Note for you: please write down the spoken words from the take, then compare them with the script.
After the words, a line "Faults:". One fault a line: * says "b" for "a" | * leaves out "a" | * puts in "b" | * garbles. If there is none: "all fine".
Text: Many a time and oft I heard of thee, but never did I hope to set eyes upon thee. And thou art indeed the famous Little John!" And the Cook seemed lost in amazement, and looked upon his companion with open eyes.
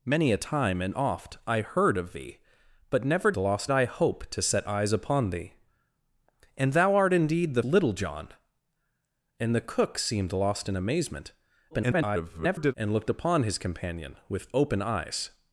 Many a time and oft I heard of thee, but never lost I hope to set eyes upon thee. And thou art indeed the Little John!" And the Cook seemed lost in amazement, [garbled] and looked upon his companion with open eyes.
Faults:
* says "lost" for "did"
* leaves out "famous"
* garbles